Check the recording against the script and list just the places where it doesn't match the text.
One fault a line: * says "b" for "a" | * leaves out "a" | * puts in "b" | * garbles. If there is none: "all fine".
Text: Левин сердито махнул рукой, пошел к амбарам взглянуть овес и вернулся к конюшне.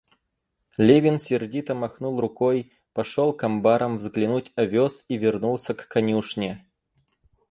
all fine